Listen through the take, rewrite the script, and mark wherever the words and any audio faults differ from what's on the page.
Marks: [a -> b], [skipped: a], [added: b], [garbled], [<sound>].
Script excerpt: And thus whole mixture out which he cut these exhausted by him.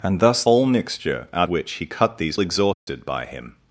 And thus whole mixture out which he cut these exhausted [dropout] by him.